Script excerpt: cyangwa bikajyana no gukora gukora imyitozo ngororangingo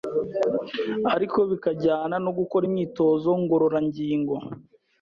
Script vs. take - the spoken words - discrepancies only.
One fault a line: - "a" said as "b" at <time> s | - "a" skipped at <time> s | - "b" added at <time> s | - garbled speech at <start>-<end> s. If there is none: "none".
- "cyangwa" said as "ariko" at 1.1 s
- "gukora" skipped at 2.6 s